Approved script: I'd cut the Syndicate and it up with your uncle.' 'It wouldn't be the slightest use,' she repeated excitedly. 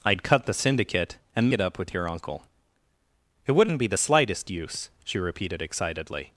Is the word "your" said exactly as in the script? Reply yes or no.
yes